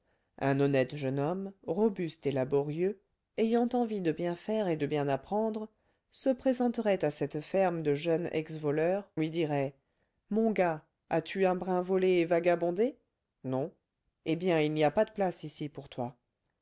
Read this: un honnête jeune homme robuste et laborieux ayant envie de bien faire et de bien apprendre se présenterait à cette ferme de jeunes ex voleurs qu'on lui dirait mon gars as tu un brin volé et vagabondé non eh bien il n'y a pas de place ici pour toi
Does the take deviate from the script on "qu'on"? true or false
true